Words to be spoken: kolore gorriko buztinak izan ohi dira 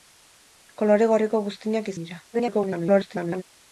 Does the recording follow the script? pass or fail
fail